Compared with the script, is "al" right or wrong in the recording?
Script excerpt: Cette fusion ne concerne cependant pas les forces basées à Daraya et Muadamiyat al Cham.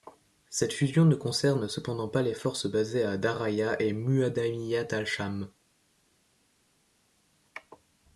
right